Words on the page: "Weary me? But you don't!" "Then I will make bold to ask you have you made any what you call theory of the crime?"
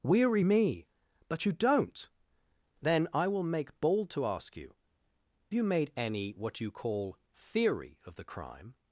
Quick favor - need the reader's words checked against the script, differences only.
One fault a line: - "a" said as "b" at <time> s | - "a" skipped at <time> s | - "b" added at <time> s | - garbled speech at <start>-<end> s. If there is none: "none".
- "have" skipped at 4.8 s